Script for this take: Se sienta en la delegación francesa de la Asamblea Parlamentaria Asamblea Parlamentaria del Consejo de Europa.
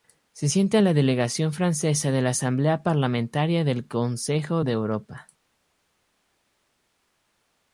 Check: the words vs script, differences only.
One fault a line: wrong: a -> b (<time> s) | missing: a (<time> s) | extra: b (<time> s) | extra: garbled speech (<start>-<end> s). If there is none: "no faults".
missing: Asamblea Parlamentaria (3.6 s)